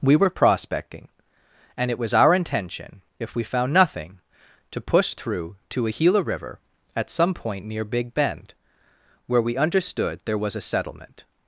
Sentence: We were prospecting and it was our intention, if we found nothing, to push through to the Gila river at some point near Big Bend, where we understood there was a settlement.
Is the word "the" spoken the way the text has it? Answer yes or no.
no